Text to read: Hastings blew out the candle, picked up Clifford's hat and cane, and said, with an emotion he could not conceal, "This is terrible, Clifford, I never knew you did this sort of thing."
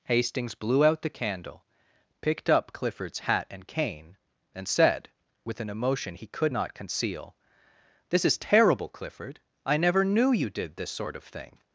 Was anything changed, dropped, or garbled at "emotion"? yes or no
no